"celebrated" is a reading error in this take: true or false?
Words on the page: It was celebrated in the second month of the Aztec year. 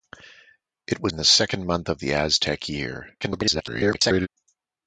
true